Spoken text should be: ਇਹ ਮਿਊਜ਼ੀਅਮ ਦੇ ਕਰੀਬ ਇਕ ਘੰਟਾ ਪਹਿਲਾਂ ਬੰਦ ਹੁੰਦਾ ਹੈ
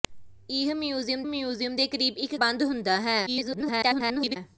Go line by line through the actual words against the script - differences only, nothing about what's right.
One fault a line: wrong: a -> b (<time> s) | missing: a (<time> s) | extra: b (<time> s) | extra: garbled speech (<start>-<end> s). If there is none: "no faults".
extra: ਮਿਊਜ਼ੀਅਮ (1.3 s)
missing: ਘੰਟਾ ਪਹਿਲਾਂ (2.4 s)
extra: garbled speech (3.3-4.4 s)